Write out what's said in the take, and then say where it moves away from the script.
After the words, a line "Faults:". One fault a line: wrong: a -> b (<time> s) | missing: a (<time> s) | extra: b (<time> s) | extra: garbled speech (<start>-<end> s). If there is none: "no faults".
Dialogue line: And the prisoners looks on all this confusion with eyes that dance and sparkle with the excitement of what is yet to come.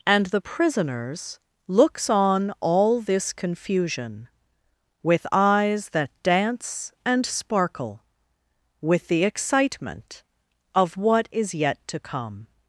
And the prisoners looks on all this confusion with eyes that dance and sparkle with the excitement of what is yet to come.
Faults:
no faults